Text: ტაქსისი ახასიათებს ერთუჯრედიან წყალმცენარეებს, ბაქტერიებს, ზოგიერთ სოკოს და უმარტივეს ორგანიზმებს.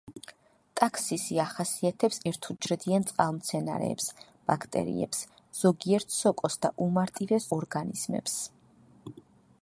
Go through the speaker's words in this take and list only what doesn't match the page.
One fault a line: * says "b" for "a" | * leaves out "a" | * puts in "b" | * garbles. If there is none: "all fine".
all fine